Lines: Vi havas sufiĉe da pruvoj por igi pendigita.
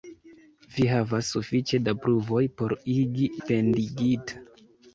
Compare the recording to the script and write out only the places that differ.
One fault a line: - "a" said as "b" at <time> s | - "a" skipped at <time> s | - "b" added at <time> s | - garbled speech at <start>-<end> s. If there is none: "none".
none